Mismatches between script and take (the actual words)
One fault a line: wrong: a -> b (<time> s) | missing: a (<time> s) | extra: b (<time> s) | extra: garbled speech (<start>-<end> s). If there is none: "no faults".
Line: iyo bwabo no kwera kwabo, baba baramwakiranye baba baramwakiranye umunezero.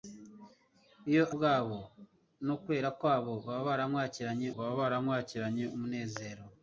no faults